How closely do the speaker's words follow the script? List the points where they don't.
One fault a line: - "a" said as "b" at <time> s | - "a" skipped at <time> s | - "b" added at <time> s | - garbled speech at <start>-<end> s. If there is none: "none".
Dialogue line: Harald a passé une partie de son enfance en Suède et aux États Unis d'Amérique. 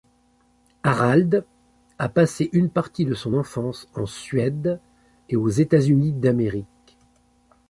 none